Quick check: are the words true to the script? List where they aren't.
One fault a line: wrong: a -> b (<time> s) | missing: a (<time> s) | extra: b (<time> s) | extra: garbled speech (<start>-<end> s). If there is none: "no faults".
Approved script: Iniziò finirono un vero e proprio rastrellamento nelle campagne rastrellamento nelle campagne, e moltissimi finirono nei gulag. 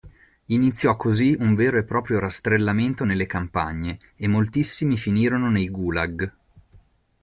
wrong: finirono -> così (0.9 s)
missing: rastrellamento nelle campagne (4.0 s)